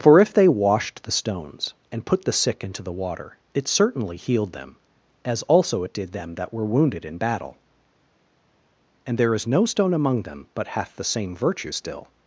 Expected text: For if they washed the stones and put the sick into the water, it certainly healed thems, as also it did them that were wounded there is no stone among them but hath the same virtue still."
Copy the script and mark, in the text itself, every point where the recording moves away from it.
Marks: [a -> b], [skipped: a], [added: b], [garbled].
For if they washed the stones and put the sick into the water, it certainly healed [thems, -> them] as also it did them that were wounded [added: in battle and] there is no stone among them but hath the same virtue still."